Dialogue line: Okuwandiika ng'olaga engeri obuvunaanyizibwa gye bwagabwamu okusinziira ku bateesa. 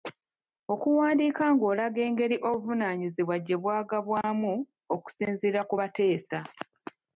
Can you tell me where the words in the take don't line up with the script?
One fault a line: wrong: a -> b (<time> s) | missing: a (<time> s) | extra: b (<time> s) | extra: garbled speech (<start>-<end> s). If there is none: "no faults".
no faults